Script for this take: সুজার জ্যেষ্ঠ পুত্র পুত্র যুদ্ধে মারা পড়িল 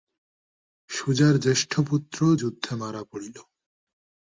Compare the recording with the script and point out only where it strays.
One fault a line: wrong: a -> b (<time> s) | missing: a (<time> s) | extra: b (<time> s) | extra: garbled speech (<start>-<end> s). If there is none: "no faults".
missing: পুত্র (2.2 s)